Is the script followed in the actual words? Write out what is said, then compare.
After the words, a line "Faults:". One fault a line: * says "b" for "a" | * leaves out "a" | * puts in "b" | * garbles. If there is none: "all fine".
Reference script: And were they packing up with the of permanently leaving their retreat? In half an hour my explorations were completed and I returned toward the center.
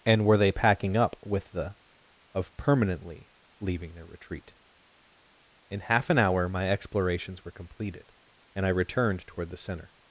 And were they packing up with the of permanently leaving their retreat? In half an hour my explorations were completed and I returned toward the center.
Faults:
all fine